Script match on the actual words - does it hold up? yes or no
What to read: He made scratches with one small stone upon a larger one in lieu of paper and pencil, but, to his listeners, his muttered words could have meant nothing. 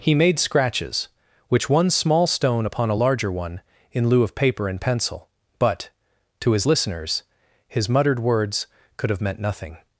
no